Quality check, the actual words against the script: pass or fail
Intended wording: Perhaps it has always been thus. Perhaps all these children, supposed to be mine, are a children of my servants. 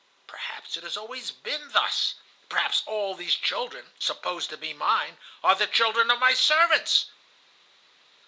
fail